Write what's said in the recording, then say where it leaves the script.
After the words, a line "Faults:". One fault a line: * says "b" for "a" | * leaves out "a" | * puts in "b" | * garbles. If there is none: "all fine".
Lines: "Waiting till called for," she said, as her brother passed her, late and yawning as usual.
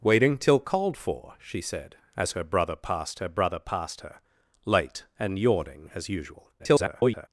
"Waiting till called for," she said, as her brother passed her brother passed her, late and yawning as usual. [garbled]
Faults:
* puts in "brother passed her"
* garbles